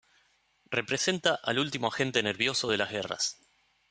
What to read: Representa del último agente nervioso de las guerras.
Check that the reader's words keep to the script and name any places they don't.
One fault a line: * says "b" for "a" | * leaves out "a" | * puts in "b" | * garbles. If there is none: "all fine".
* says "al" for "del"